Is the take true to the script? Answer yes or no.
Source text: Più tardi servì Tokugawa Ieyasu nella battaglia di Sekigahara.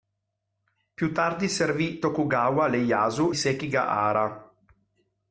no